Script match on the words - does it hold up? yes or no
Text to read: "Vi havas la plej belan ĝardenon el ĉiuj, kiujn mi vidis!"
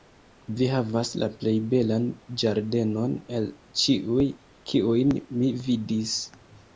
yes